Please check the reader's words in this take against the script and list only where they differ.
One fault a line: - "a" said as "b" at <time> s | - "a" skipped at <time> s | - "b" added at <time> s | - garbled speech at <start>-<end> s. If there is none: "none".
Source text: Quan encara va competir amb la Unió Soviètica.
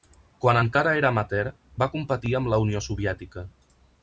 - "era amateur" added at 1.0 s